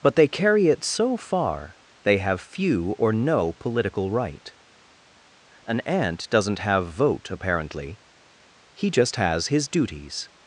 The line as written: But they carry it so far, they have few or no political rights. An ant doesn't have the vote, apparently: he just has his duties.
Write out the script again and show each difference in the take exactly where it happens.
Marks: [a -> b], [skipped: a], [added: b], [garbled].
But they carry it so far, they have few or no political [rights. -> right] An ant doesn't have [skipped: the] vote, apparently: he just has his duties.